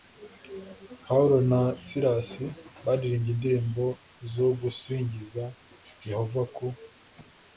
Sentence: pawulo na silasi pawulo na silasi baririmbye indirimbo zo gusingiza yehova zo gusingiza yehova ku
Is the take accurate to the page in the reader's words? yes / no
no